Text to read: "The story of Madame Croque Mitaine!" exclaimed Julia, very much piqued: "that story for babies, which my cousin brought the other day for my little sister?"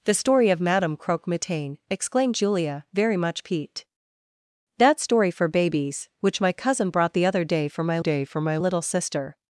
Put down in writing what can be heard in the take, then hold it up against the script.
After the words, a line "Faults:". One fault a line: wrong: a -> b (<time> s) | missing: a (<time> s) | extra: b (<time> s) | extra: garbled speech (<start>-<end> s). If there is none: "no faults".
"The story of Madame Croque Mitaine!" exclaimed Julia, very much piqued: "that story for babies, which my cousin brought the other day for my day for my little sister?"
Faults:
extra: day for my (8.0 s)